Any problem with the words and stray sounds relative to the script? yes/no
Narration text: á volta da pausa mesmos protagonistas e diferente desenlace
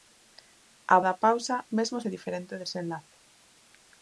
yes